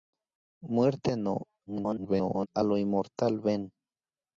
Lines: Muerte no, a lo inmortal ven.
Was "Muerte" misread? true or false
false